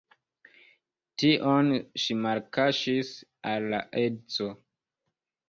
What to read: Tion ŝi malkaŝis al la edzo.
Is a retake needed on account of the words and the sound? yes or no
no